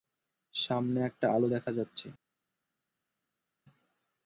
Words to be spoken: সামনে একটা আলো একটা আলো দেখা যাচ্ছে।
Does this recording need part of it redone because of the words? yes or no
yes